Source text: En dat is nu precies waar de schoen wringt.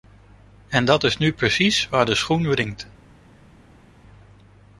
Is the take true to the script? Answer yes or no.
yes